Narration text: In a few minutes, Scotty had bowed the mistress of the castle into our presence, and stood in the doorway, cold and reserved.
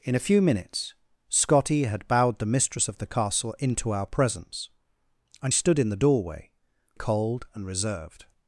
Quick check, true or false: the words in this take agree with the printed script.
true